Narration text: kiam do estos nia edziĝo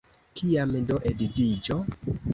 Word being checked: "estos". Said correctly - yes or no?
no